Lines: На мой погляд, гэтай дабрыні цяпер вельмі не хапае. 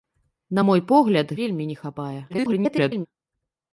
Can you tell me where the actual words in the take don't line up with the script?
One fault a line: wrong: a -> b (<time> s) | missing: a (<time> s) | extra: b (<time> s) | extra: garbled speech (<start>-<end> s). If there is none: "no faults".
missing: гэтай дабрыні цяпер (1.3 s)
extra: garbled speech (2.3-3.1 s)